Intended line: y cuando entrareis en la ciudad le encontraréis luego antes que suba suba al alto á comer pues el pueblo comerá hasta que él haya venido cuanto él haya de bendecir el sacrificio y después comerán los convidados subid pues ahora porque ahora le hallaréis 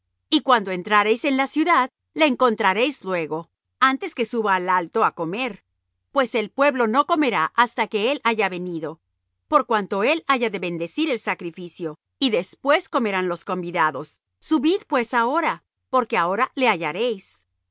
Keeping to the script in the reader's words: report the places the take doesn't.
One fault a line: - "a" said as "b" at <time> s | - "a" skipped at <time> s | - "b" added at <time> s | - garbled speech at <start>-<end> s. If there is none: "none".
- "suba" skipped at 4.5 s
- "no" added at 6.9 s
- "por" added at 9.5 s